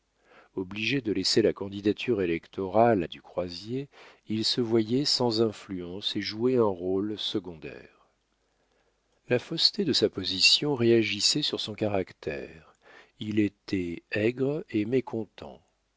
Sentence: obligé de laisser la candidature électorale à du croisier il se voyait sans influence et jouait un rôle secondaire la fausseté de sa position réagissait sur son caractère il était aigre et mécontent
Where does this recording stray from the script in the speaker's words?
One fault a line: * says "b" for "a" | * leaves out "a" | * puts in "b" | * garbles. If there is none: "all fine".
all fine